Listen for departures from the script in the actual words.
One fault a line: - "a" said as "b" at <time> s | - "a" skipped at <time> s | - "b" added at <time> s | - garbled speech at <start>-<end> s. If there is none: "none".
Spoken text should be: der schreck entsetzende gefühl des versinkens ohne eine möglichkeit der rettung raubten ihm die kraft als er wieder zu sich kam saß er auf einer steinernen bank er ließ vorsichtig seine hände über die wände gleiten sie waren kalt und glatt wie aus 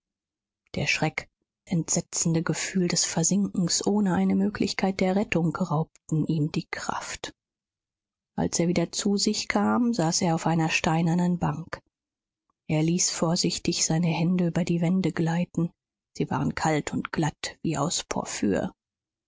none